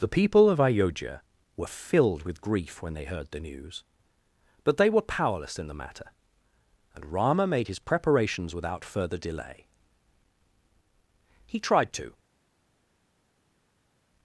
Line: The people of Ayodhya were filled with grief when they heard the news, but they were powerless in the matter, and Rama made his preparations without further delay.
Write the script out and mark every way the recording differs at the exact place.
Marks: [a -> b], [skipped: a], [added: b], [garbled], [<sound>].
The people of Ayodhya were filled with grief when they heard the news, but they were powerless in the matter, and Rama made his preparations without further delay. [added: He tried to]